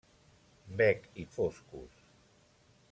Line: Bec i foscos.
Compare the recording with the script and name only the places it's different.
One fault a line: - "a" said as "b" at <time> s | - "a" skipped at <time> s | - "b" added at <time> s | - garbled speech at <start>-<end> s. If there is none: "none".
none